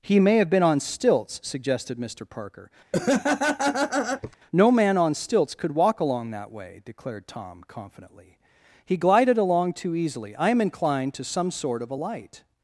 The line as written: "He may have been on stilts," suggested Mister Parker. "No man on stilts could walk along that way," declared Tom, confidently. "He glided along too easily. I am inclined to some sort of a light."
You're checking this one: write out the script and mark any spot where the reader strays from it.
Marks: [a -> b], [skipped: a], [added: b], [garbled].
"He may have been on stilts," suggested Mister Parker. "No man on stilts could walk along that way," declared Tom, confidently. "He glided along too easily. I am inclined to some sort of a light."